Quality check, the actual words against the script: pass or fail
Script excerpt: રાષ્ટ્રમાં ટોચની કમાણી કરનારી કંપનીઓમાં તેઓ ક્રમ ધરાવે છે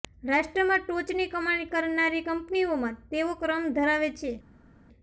pass